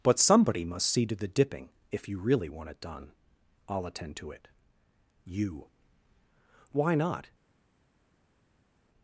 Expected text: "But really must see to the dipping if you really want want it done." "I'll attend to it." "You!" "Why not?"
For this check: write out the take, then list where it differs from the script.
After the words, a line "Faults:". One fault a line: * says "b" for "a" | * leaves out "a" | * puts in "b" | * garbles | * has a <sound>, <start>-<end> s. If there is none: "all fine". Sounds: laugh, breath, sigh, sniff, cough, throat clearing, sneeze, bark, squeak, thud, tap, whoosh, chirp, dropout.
"But somebody must see to the dipping if you really want it done." "I'll attend to it." "You!" "Why not?"
Faults:
* says "somebody" for "really"
* leaves out "want"